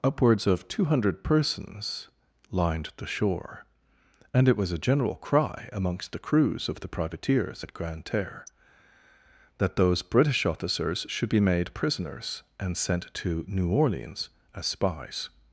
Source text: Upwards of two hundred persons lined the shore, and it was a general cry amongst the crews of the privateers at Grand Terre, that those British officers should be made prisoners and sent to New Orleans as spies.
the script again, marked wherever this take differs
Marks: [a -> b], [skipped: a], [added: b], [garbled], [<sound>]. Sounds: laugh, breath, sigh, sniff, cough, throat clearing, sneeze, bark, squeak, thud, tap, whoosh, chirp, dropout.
Upwards of two hundred persons lined the shore, and it was a general cry amongst the crews of the privateers at Grand Terre, that those British officers should be made prisoners and sent to New Orleans as spies.